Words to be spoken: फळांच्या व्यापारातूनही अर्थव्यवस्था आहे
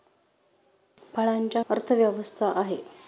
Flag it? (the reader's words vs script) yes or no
yes